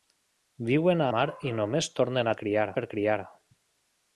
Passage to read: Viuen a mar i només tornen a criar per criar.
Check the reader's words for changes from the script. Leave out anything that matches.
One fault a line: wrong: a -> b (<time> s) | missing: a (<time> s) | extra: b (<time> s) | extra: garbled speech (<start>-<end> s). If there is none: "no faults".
no faults